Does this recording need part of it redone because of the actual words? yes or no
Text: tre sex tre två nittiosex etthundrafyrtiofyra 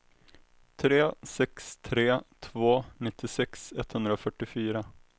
no